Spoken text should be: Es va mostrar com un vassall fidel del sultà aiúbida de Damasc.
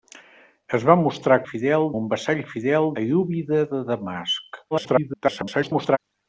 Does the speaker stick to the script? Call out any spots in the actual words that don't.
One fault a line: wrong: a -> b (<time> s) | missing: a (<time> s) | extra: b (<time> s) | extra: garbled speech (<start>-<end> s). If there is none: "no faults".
wrong: com -> fidel (1.5 s)
missing: del sultà (2.9 s)
extra: garbled speech (4.7-6.0 s)